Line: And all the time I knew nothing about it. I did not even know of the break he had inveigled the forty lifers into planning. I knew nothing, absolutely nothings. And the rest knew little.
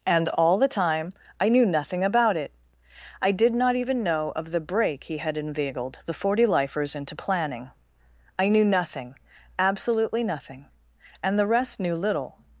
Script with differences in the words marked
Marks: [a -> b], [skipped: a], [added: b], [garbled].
And all the time I knew nothing about it. I did not even know of the break he had inveigled the forty lifers into planning. I knew nothing, absolutely [nothings. -> nothing] And the rest knew little.